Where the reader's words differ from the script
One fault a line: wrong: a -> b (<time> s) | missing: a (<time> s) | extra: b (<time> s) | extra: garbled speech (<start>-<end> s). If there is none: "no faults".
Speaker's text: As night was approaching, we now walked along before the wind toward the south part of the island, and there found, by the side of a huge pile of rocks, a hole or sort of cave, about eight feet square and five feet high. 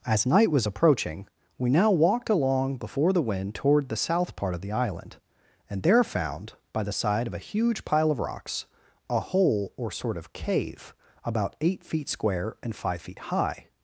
no faults